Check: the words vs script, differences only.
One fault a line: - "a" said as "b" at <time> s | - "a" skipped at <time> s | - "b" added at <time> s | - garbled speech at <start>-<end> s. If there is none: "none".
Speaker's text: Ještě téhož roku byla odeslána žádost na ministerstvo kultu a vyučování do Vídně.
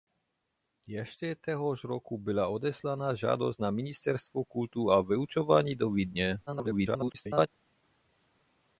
- garbled speech at 6.5-7.5 s